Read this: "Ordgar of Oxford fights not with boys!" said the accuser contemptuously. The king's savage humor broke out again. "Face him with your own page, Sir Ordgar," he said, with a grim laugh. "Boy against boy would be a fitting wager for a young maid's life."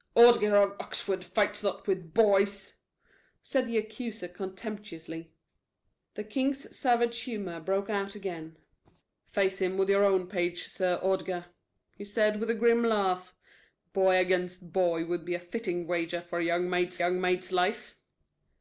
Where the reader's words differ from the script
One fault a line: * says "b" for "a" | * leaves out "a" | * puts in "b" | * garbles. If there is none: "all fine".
* puts in "young maid's"